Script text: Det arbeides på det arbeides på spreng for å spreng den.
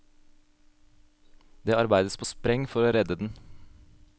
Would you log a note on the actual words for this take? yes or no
yes